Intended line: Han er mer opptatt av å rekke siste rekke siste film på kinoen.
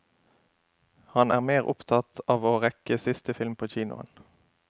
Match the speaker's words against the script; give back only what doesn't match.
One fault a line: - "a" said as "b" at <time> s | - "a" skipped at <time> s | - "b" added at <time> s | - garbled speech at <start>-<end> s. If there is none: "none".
- "rekke siste" skipped at 3.3 s